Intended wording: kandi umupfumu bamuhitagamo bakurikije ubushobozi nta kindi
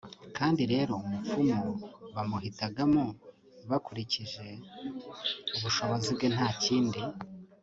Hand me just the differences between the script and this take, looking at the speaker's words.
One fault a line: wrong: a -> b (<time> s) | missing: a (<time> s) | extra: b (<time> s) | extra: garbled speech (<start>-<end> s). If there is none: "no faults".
extra: rero (0.7 s)
extra: bwe (6.2 s)